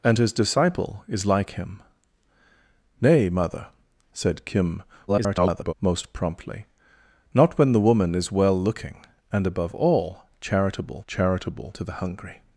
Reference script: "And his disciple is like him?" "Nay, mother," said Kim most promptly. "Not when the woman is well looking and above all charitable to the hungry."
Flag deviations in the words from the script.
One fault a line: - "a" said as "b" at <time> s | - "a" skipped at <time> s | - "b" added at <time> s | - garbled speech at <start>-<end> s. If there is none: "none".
- garbled speech at 5.1-5.7 s
- "charitable" added at 11.1 s